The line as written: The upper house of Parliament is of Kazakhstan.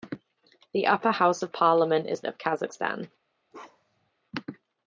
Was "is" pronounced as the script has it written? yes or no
yes